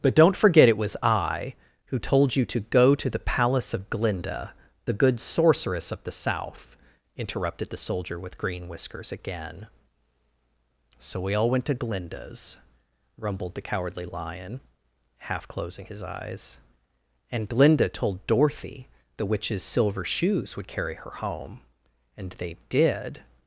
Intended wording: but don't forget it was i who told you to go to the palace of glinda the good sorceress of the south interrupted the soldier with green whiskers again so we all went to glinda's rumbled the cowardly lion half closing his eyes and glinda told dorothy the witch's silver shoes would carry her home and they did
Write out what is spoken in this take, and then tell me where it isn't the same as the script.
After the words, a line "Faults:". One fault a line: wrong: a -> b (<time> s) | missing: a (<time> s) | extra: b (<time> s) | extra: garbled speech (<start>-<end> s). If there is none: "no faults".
but don't forget it was i who told you to go to the palace of glinda the good sorceress of the south interrupted the soldier with green whiskers again so we all went to glinda's rumbled the cowardly lion half closing his eyes and glinda told dorothy the witch's silver shoes would carry her home and they did
Faults:
no faults